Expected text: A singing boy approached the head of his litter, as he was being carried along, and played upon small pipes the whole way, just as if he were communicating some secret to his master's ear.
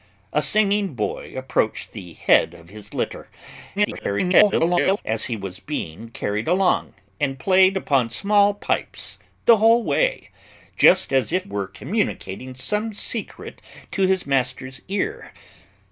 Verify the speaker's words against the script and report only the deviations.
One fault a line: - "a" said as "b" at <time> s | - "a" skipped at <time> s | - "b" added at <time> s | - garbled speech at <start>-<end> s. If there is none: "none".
- garbled speech at 3.8-5.0 s
- "he" skipped at 11.5 s